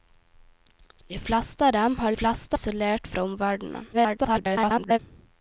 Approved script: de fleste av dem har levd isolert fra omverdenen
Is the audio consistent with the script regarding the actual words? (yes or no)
no